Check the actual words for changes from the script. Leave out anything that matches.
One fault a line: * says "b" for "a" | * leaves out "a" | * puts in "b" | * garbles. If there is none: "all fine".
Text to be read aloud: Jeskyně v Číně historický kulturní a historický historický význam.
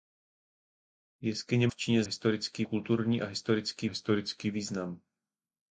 all fine